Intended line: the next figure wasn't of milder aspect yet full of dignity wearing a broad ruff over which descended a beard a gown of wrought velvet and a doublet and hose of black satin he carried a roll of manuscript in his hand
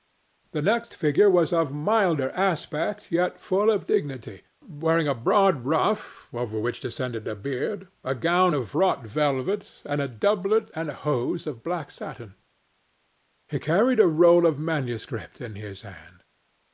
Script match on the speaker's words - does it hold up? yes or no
no